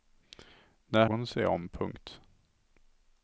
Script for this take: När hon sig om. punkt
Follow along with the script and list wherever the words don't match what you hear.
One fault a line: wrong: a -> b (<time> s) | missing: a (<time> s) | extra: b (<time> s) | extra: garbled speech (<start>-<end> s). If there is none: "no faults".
no faults